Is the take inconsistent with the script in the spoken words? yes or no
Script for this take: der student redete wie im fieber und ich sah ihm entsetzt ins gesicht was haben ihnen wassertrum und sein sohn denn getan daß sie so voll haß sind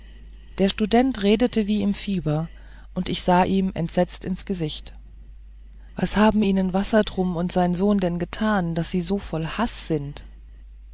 no